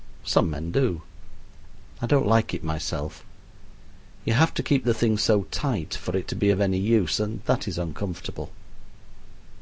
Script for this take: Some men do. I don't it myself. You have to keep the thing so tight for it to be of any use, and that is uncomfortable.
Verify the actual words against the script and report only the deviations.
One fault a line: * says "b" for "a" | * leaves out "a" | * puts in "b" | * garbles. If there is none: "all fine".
* puts in "like"